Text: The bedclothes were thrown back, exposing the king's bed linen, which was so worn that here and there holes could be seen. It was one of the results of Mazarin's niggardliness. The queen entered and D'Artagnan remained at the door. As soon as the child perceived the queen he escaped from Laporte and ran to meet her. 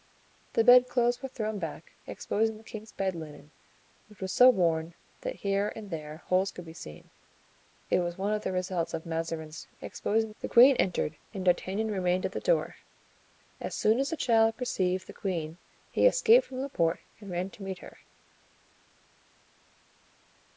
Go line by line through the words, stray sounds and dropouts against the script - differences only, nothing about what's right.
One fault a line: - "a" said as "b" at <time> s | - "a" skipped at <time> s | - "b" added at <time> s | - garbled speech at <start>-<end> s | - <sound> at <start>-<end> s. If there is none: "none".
- "niggardliness" said as "exposing" at 9.8 s